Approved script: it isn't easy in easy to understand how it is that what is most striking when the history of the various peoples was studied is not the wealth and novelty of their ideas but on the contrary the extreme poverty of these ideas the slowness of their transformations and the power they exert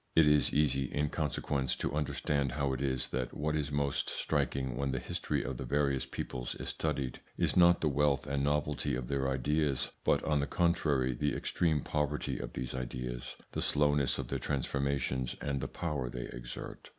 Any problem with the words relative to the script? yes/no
yes